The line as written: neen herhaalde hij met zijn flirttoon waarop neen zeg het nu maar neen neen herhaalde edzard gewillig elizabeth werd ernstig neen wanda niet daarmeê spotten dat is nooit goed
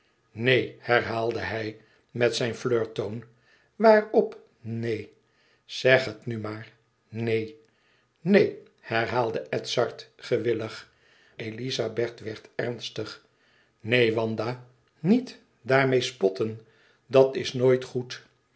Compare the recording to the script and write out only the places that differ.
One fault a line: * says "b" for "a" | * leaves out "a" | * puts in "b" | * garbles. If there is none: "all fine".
all fine